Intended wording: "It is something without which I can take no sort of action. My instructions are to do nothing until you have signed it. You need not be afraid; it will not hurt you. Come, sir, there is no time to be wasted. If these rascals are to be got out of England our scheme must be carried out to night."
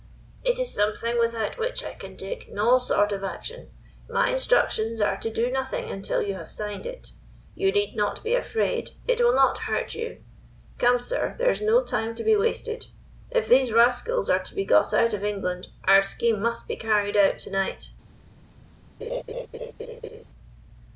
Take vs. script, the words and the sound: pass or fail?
fail